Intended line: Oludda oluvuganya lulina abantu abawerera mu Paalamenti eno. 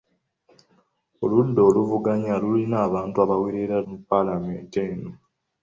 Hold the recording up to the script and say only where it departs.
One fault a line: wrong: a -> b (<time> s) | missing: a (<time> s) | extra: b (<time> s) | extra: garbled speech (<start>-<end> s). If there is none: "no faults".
no faults